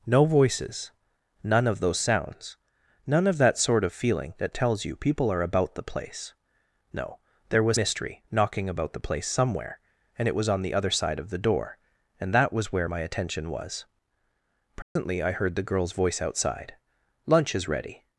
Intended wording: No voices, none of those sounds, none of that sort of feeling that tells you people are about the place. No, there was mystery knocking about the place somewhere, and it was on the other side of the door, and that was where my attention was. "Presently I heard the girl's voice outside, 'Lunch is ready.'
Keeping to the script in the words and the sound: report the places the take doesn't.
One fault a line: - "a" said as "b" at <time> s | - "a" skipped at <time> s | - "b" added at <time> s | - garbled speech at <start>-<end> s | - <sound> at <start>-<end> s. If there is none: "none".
- dropout at 14.8-15.0 s